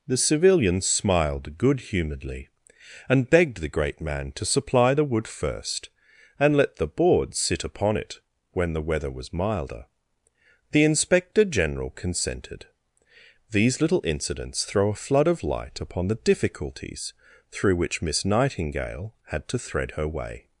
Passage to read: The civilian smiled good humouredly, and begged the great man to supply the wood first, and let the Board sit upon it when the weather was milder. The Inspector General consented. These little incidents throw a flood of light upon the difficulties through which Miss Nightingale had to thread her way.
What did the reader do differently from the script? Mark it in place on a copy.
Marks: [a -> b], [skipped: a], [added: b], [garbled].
The civilian smiled good humouredly, and begged the great man to supply the wood first, and let the Board sit upon it when the weather was milder. The Inspector General consented. These little incidents throw a flood of light upon the difficulties through which Miss Nightingale had to thread her way.